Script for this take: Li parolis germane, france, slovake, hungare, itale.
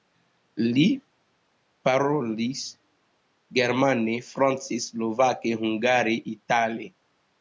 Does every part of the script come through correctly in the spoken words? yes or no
yes